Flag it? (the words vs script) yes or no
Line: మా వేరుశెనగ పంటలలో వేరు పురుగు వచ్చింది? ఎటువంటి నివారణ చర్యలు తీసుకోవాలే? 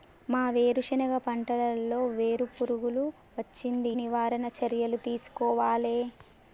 yes